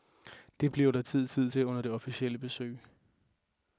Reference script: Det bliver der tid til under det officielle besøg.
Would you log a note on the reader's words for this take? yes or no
yes